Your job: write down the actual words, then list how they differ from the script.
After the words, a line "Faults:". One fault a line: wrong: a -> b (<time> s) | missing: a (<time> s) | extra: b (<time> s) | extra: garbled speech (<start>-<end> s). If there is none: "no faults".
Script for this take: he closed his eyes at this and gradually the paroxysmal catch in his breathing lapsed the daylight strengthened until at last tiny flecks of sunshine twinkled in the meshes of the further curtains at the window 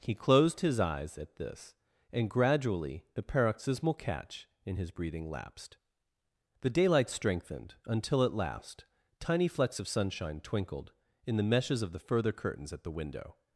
he closed his eyes at this and gradually the paroxysmal catch in his breathing lapsed the daylight strengthened until at last tiny flecks of sunshine twinkled in the meshes of the further curtains at the window
Faults:
no faults